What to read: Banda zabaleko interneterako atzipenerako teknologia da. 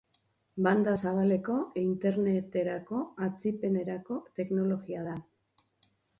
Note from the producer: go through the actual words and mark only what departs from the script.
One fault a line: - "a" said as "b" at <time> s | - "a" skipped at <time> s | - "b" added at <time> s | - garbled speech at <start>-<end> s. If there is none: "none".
none